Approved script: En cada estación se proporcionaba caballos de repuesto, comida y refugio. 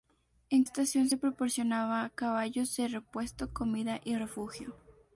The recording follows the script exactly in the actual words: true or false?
false